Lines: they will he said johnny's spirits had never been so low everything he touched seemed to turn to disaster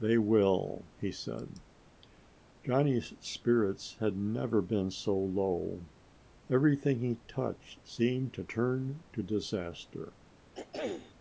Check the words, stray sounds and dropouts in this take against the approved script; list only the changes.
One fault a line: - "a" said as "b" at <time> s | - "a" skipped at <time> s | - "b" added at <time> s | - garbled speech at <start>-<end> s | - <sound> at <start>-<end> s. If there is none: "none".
- throat clearing at 10.5-11.1 s